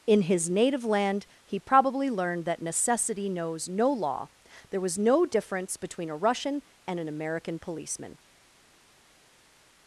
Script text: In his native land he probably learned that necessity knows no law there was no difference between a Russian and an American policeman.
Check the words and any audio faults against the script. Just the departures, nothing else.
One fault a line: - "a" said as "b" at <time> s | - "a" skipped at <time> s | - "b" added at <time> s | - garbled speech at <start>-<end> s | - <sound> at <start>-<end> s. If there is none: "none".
none